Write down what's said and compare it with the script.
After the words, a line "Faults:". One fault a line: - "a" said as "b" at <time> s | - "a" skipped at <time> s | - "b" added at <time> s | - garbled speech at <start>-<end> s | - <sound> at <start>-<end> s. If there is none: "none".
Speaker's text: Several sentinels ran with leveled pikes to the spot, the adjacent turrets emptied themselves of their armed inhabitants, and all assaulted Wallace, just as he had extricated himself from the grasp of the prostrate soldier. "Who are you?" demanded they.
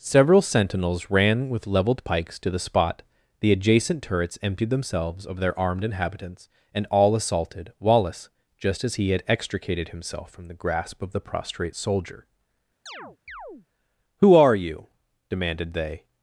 Several sentinels ran with leveled pikes to the spot, the adjacent turrets emptied themselves of their armed inhabitants, and all assaulted Wallace, just as he had extricated himself from the grasp of the prostrate soldier. "Who are you?" demanded they.
Faults:
- chirp at 12.9-13.7 s